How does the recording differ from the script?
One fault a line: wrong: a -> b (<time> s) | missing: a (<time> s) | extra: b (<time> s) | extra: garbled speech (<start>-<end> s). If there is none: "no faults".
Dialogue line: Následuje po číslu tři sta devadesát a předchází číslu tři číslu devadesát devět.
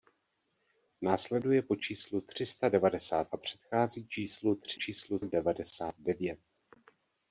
no faults